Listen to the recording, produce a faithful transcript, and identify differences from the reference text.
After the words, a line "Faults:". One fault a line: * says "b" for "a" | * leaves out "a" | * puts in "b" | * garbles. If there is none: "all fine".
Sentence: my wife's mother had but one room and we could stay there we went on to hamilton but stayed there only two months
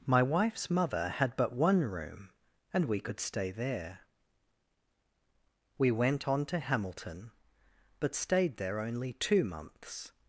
my wife's mother had but one room and we could stay there we went on to hamilton but stayed there only two months
Faults:
all fine